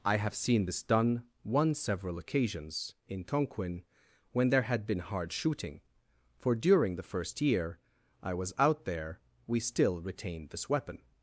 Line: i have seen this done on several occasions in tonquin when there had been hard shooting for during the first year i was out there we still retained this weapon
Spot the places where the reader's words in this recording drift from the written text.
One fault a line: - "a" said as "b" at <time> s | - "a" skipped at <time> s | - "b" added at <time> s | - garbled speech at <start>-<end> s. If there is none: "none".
- "on" said as "one" at 1.4 s